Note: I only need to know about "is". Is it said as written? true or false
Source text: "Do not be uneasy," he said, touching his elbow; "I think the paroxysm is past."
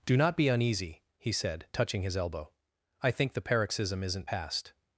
false